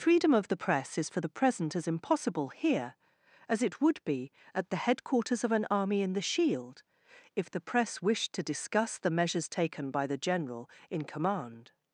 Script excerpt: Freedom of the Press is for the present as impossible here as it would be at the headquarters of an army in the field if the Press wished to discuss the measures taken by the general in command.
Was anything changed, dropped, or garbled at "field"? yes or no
yes